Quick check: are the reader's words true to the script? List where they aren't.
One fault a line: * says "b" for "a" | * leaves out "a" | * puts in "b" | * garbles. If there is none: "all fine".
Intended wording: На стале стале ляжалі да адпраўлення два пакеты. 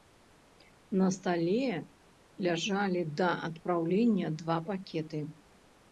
* leaves out "стале"